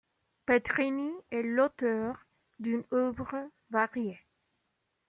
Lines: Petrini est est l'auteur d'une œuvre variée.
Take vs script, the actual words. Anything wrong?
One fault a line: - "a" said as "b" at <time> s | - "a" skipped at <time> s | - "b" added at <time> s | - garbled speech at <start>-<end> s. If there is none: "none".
- "est" skipped at 1.4 s